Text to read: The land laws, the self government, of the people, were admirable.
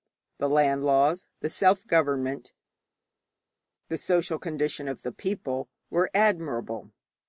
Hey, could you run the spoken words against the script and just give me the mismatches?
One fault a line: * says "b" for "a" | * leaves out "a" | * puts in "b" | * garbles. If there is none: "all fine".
* puts in "the social condition"